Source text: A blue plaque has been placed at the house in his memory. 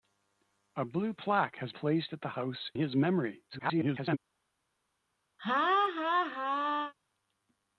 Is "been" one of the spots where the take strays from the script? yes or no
yes